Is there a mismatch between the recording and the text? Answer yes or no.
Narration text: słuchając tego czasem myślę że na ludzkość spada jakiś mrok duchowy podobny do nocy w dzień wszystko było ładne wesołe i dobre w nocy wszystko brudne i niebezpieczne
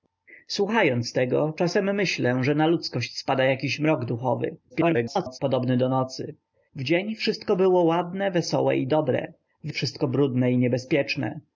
yes